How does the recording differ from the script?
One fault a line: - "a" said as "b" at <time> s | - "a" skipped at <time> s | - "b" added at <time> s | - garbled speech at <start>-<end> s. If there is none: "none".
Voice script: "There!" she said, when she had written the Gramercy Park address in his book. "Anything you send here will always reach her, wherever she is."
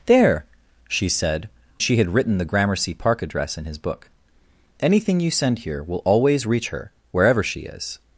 - "when" skipped at 1.5 s